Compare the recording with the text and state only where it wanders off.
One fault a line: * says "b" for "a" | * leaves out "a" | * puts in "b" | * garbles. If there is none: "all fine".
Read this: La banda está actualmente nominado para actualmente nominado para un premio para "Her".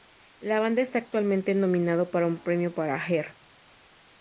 * leaves out "actualmente nominado para"